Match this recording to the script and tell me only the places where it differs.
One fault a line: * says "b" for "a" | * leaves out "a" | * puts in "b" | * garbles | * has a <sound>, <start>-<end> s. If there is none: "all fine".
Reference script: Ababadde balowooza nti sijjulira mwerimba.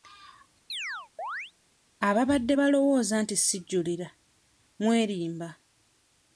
* has a chirp, 0.7-1.5 s